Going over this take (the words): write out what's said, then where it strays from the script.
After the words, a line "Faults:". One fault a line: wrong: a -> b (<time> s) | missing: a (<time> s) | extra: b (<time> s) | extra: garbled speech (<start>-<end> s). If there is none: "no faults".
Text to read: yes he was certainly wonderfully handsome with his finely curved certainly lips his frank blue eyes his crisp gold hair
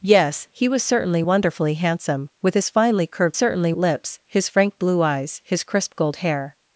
yes he was certainly wonderfully handsome with his finely curved certainly lips his frank blue eyes his crisp gold hair
Faults:
no faults